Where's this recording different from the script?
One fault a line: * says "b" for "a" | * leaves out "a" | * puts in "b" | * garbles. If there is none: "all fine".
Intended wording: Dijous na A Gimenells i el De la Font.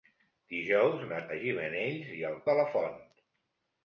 all fine